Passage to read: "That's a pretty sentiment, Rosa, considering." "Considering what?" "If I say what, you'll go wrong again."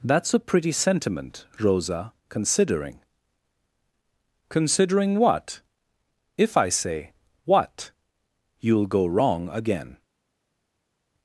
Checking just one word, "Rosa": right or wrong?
right